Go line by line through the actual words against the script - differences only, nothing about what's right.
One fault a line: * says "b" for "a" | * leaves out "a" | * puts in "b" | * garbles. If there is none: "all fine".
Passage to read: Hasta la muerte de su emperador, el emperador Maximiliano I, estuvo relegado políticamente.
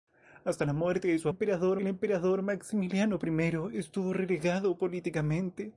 all fine